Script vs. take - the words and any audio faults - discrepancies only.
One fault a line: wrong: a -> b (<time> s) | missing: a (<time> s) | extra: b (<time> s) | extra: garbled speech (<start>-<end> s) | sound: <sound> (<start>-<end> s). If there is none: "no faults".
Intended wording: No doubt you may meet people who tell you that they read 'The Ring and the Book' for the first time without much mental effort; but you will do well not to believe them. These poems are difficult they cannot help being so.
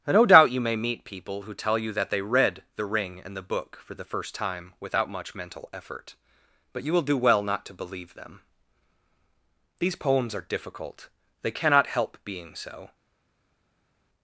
no faults